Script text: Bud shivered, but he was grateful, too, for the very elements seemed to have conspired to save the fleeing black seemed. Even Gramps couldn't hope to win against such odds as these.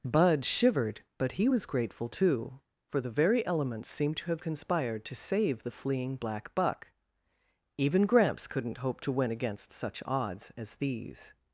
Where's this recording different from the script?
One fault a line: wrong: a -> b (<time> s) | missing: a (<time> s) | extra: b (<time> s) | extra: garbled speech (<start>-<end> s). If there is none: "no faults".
wrong: seemed -> buck (6.5 s)